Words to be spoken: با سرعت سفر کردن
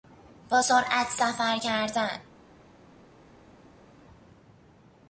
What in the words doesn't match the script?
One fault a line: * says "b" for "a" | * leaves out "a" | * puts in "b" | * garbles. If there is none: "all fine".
all fine